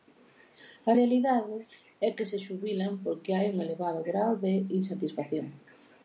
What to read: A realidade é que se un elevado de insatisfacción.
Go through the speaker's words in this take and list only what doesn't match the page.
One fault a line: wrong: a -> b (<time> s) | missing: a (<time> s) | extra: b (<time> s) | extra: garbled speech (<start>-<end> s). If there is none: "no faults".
extra: xubilan porque hai (2.5 s)
extra: grao (4.1 s)